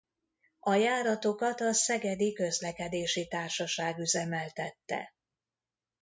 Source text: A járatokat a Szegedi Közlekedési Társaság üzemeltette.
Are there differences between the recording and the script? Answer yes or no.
no